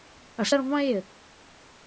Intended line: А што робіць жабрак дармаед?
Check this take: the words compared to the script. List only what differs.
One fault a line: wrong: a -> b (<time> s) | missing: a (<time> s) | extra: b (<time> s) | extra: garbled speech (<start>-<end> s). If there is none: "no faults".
missing: што робіць жабрак (0.5 s)